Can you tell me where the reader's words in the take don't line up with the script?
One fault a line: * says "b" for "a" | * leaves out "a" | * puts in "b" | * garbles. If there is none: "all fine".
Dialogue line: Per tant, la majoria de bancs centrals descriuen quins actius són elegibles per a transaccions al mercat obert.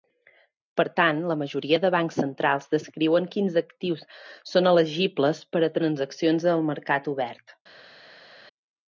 all fine